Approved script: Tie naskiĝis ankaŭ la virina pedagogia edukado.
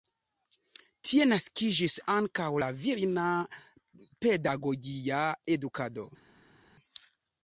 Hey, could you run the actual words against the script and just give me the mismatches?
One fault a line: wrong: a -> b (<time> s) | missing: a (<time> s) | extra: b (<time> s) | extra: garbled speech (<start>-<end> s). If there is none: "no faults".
no faults